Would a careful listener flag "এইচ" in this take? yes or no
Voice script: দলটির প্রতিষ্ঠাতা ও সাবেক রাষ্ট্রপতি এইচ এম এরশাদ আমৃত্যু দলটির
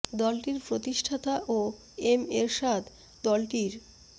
yes